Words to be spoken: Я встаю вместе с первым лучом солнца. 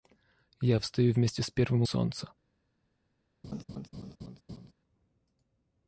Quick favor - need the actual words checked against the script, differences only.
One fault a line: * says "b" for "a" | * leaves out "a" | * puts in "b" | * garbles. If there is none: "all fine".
* leaves out "лучом"